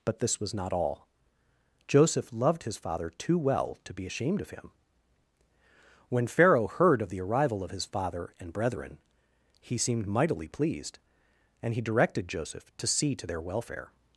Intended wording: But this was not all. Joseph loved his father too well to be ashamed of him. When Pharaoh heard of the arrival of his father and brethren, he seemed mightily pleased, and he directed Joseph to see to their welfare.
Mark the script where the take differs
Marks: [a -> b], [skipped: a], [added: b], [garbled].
But this was not all. Joseph loved his father too well to be ashamed of him. When Pharaoh heard of the arrival of his father and brethren, he seemed mightily pleased, and he directed Joseph to see to their welfare.